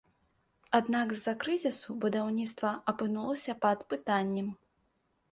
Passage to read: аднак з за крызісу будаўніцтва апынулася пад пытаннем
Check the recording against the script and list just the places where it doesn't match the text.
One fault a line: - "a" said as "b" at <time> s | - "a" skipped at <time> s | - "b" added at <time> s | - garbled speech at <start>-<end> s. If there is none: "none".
none